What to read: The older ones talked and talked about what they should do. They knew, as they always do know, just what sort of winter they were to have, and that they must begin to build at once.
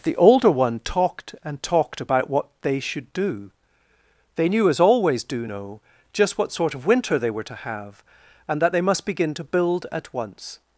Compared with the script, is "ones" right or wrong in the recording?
wrong